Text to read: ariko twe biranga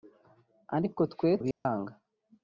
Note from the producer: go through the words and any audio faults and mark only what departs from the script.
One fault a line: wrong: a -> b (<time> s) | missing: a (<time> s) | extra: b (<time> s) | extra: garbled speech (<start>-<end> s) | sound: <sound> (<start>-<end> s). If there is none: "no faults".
sound: dropout (1.5-1.7 s)